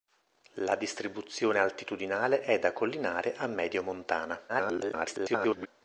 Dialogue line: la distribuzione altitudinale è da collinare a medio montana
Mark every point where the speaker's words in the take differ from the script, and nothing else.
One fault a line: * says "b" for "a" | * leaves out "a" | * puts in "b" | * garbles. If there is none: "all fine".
* garbles